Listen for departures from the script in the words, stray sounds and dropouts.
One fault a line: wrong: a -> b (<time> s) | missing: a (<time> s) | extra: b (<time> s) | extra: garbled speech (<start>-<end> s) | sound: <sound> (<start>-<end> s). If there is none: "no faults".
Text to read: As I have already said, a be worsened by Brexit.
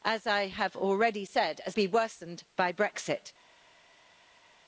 no faults